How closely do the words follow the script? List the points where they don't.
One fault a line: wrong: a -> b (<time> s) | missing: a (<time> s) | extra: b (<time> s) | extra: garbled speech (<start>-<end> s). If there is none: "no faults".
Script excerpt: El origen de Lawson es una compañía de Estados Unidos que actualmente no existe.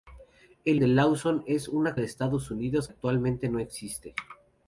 missing: origen (0.8 s)
missing: compañía (2.0 s)
missing: que (2.9 s)